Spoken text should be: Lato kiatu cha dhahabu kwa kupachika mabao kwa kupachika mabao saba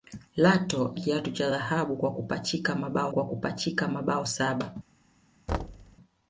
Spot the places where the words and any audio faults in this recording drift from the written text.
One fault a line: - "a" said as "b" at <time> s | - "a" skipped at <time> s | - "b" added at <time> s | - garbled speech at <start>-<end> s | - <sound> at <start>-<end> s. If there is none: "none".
- thud at 5.5-6.0 s